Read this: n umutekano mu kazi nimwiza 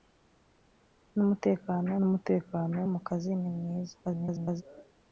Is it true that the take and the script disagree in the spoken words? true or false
true